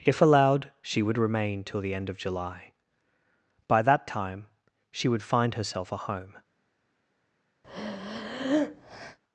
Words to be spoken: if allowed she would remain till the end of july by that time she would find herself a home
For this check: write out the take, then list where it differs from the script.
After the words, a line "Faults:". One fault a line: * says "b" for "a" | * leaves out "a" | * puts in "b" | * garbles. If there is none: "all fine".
if allowed she would remain till the end of july by that time she would find herself a home
Faults:
all fine